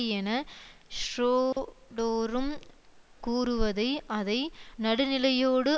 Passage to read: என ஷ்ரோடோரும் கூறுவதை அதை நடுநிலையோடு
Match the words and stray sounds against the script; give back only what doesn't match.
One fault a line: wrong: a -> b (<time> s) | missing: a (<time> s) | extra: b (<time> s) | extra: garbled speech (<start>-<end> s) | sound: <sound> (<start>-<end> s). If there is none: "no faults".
sound: dropout (1.5-1.6 s)